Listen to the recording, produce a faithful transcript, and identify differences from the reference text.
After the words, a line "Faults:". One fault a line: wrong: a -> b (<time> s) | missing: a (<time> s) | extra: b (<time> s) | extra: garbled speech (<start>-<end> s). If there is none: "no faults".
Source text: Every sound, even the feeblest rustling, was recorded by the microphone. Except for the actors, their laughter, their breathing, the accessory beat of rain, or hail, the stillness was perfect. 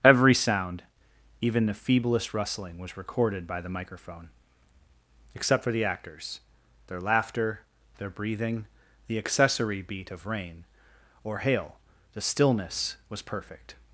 Every sound, even the feeblest rustling, was recorded by the microphone. Except for the actors, their laughter, their breathing, the accessory beat of rain, or hail, the stillness was perfect.
Faults:
no faults